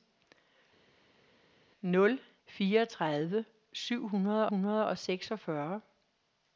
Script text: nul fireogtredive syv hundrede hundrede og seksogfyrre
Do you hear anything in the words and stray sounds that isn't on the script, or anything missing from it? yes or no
no